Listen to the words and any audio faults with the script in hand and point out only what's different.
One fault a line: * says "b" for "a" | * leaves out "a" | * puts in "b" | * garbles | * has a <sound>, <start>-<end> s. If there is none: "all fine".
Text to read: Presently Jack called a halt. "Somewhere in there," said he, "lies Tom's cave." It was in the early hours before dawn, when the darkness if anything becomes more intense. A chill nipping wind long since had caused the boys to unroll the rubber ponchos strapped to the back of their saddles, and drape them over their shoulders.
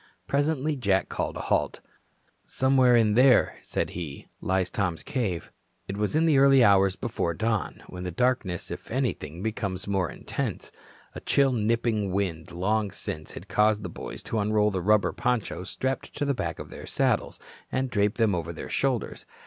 all fine